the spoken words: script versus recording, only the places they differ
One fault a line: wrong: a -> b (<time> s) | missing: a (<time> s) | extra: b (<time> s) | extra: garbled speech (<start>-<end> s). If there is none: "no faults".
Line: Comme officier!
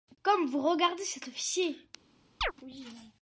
extra: vous regardez cet (0.5 s)